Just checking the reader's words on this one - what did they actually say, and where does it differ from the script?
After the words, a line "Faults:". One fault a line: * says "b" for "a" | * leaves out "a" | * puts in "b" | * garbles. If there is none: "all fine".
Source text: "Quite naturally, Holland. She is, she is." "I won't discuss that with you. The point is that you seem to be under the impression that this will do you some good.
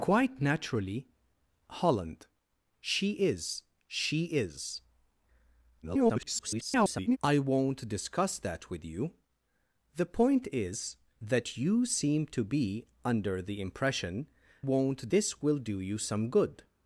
"Quite naturally, Holland. She is, she is." [garbled] "I won't discuss that with you. The point is that you seem to be under the impression won't this will do you some good.
Faults:
* garbles
* says "won't" for "that"